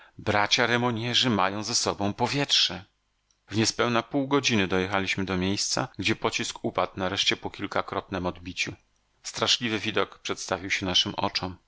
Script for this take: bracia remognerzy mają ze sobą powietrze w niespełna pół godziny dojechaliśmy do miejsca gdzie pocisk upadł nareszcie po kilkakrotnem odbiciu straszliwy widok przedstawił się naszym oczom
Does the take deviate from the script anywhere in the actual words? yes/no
no